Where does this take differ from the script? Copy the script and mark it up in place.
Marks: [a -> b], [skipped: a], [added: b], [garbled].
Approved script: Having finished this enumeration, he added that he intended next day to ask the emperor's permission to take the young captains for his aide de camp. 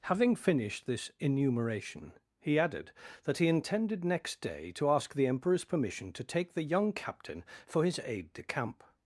Having finished this enumeration, he added that he intended next day to ask the emperor's permission to take the young [captains -> captain] for his aide de camp.